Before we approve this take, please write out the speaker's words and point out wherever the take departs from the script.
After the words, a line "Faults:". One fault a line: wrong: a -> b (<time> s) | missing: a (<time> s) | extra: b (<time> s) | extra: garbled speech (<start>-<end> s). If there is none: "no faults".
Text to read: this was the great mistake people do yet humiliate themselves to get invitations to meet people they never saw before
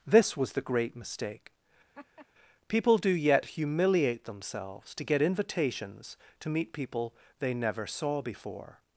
this was the great mistake people do yet humiliate themselves to get invitations to meet people they never saw before
Faults:
no faults